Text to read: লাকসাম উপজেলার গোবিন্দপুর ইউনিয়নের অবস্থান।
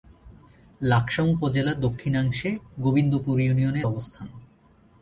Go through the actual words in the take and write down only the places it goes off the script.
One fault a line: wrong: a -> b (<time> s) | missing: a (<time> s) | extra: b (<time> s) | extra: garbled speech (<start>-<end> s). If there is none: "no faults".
extra: দক্ষিণাংশে (1.8 s)